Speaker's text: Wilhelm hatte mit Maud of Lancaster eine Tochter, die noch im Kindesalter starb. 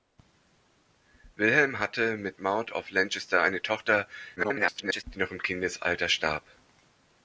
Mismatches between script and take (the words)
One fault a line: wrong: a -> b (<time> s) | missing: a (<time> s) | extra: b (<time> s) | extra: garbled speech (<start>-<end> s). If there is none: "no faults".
extra: garbled speech (4.4-5.0 s)